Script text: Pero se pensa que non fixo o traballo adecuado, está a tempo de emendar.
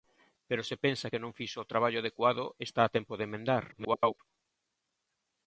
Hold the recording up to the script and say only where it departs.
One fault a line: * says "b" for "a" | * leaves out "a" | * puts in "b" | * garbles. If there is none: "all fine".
* garbles